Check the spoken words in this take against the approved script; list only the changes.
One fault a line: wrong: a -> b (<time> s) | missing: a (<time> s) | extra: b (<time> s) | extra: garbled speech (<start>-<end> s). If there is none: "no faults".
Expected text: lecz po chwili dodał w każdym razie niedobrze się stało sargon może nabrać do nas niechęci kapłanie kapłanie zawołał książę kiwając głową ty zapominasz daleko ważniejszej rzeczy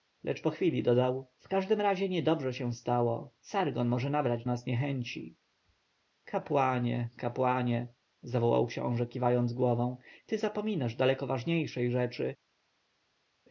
missing: do (4.5 s)